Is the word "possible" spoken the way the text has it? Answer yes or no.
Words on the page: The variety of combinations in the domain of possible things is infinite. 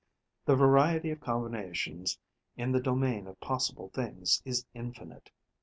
yes